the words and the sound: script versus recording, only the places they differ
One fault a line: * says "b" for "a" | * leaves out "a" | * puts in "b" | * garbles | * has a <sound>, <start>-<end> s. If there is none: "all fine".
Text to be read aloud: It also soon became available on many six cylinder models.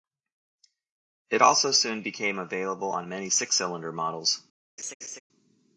* has a laugh, 4.8-5.2 s